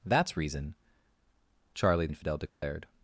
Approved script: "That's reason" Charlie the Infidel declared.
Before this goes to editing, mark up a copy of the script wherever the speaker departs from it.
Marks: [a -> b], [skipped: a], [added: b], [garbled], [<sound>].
"That's reason" Charlie [skipped: the] Infidel declared. [dropout]